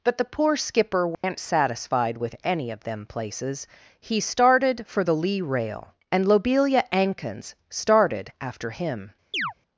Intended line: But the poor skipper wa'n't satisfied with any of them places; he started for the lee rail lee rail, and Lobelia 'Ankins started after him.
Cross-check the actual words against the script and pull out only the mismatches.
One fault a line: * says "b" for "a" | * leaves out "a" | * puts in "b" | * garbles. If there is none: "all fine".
* leaves out "lee rail"